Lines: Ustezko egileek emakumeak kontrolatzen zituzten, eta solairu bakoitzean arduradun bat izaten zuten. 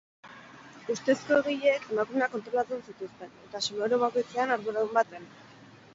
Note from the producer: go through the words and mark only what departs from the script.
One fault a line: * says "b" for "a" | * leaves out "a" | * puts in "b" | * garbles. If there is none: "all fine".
* leaves out "bat izaten"